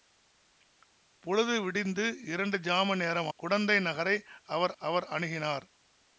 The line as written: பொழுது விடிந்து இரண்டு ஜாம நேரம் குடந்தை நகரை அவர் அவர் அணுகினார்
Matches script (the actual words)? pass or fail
pass